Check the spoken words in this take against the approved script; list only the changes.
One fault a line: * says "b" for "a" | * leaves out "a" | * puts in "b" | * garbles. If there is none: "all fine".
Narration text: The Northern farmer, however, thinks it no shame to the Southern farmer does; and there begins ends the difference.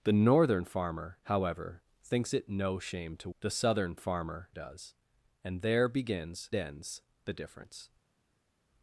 all fine